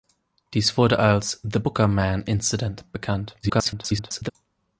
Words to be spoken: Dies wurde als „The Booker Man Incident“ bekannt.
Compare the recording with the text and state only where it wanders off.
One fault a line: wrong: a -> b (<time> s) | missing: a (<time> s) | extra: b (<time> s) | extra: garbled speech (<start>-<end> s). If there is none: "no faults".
extra: garbled speech (3.4-4.3 s)